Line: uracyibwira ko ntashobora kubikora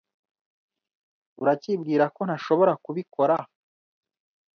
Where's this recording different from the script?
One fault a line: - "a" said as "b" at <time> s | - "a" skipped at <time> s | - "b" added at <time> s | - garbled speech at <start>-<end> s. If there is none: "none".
none